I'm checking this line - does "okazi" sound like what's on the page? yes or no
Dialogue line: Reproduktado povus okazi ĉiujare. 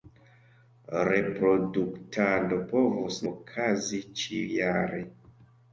yes